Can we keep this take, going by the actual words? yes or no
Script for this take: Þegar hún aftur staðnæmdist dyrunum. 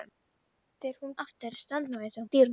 yes